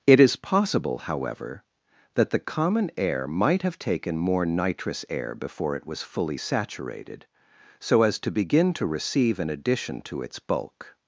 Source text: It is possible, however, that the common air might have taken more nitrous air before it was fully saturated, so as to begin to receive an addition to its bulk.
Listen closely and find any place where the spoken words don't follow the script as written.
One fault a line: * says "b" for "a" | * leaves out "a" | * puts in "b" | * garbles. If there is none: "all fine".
all fine